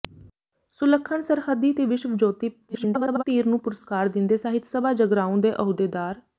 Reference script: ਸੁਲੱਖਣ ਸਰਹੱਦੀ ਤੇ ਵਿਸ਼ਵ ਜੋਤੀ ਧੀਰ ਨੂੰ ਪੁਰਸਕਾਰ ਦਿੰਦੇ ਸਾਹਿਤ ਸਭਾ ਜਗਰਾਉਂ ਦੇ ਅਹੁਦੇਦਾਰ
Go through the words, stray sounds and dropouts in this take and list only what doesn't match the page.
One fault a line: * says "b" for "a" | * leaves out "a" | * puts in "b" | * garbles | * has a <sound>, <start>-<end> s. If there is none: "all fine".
* garbles